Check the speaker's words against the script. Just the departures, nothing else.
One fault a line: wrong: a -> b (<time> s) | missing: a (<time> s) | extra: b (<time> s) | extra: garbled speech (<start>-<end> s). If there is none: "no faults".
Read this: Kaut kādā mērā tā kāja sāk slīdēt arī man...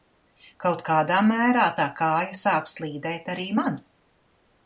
no faults